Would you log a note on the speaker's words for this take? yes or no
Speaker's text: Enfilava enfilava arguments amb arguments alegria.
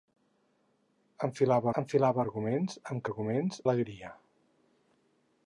no